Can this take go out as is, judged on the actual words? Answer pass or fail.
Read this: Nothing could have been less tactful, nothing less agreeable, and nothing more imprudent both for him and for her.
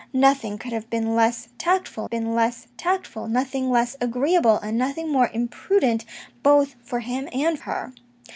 fail